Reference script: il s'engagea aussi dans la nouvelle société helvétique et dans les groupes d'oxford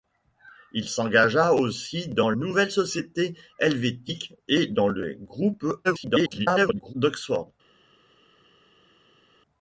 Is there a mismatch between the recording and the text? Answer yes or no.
yes